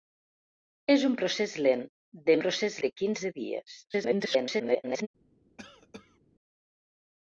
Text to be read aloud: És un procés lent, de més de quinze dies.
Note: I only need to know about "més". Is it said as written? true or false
false